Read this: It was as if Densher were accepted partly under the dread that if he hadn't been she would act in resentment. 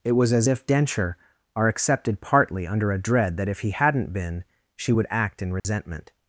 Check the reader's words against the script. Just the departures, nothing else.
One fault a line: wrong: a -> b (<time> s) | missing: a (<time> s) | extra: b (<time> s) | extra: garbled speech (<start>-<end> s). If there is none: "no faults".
wrong: were -> are (1.5 s)
wrong: the -> a (2.9 s)